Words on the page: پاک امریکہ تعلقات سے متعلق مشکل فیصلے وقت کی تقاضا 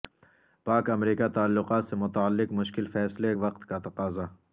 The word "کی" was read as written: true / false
false